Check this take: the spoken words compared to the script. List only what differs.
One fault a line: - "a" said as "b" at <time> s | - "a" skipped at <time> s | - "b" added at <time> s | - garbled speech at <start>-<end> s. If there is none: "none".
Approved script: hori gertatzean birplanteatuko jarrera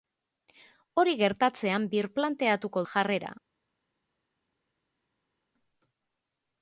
none